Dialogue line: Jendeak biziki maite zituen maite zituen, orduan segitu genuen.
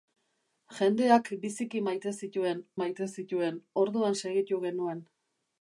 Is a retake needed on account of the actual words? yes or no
no